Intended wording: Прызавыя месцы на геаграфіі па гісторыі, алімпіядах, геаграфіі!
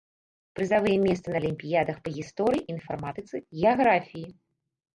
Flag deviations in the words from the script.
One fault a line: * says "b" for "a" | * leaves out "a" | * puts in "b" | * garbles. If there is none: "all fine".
* says "алімпіядах" for "геаграфіі"
* says "інфарматыцы" for "алімпіядах"